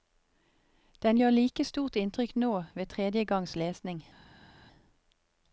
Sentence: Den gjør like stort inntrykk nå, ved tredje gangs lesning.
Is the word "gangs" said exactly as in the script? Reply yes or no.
yes